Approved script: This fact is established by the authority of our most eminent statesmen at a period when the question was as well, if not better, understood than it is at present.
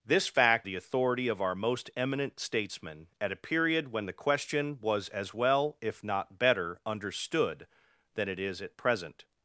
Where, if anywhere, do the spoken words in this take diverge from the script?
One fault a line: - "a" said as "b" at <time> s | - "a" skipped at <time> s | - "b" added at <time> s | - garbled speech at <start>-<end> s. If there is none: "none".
- "is established by" skipped at 0.7 s